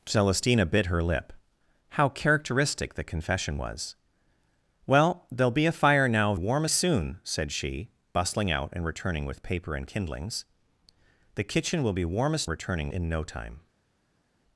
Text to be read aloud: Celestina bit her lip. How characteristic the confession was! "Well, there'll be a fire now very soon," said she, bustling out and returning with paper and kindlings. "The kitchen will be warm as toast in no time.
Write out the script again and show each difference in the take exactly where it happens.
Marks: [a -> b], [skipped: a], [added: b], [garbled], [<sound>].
Celestina bit her lip. How characteristic the confession was! "Well, there'll be a fire now [very -> warm] soon," said she, bustling out and returning with paper and kindlings. "The kitchen will be warm as [toast -> returning] in no time.